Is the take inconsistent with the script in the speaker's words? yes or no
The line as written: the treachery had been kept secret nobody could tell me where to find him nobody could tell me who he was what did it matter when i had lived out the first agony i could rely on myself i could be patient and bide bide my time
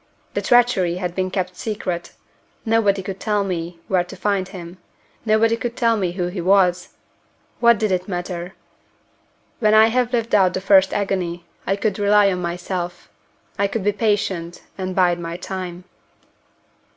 yes